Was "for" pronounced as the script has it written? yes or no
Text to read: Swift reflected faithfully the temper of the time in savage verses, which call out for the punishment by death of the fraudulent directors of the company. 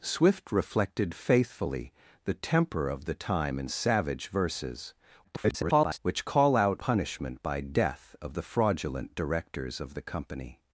no